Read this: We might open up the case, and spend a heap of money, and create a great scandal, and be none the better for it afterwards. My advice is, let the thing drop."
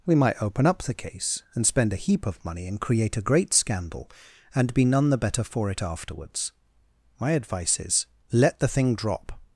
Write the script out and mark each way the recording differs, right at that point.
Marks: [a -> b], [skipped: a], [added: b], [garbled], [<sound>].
We might open up the case, and spend a heap of money, and create a great scandal, and be none the better for it afterwards. My advice is, let the thing drop."